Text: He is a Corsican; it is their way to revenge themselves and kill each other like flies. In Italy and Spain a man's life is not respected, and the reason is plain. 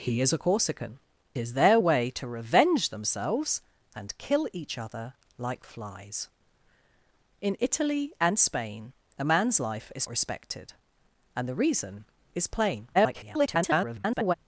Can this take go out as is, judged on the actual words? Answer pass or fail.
fail